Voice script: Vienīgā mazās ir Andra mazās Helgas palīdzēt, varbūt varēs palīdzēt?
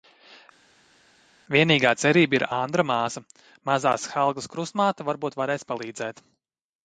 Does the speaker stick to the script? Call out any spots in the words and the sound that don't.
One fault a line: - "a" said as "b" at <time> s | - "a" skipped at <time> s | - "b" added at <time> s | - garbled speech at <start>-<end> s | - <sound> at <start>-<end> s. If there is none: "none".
- "mazās" said as "cerība" at 2.0 s
- "māsa" added at 2.9 s
- "palīdzēt" said as "krustmāte" at 4.5 s